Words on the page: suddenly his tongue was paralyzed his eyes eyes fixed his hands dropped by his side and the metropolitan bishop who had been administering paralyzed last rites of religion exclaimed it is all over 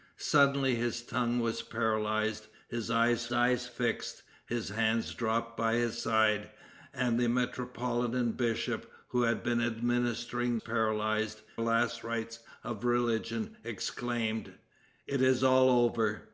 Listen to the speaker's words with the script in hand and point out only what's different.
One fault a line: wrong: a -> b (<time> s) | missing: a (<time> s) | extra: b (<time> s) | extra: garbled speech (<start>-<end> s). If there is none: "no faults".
no faults